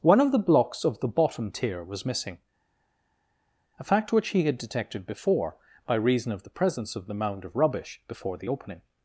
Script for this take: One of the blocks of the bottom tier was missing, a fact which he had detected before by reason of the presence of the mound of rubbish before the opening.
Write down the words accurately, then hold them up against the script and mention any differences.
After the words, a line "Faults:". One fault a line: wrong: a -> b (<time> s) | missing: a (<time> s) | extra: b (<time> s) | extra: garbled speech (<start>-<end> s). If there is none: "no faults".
One of the blocks of the bottom tier was missing, a fact which he had detected before by reason of the presence of the mound of rubbish before the opening.
Faults:
no faults